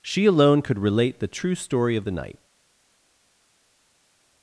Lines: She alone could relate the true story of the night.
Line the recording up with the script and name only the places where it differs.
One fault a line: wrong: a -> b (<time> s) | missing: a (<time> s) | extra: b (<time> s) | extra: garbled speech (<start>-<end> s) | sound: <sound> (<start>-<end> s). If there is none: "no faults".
no faults